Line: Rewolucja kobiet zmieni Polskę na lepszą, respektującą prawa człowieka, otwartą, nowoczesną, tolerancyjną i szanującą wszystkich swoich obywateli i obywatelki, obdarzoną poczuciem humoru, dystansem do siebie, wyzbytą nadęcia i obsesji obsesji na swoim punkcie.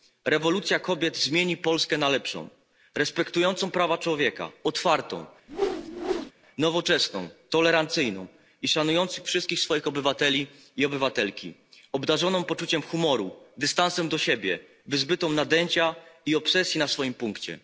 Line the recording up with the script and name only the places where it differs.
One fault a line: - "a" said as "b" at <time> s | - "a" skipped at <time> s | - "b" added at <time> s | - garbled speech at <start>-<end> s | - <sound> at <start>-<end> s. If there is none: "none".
- whoosh at 5.5-6.3 s
- "obsesji" skipped at 16.8 s